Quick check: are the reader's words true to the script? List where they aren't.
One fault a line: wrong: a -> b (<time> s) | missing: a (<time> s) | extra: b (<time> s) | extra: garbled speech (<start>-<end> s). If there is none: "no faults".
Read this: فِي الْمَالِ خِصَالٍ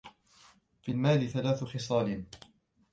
extra: ثَلَاثُ (1.3 s)